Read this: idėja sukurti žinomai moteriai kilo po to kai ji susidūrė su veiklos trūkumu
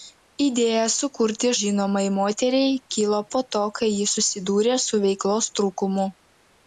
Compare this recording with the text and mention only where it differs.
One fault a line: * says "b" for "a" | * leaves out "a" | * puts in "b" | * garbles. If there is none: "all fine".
all fine